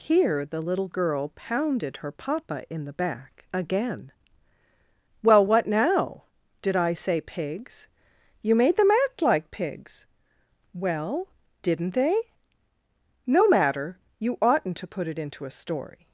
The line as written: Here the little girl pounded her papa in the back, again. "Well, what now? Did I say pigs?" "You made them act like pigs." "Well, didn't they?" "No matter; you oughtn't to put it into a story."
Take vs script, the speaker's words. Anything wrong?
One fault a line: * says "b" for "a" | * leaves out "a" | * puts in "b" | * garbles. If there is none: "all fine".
all fine